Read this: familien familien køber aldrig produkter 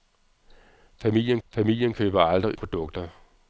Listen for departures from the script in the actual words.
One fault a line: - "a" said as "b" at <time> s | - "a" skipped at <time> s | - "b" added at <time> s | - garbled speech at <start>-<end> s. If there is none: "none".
none